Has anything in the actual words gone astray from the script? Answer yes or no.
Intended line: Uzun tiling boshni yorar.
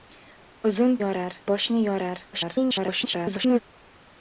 yes